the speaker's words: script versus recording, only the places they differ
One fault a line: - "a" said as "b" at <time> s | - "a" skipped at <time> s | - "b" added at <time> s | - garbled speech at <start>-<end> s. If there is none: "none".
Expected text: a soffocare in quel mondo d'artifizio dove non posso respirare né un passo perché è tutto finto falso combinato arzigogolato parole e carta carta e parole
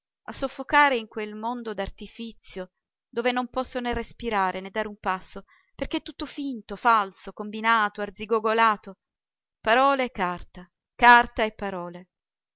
- "né" added at 3.8 s
- "dare" added at 4.7 s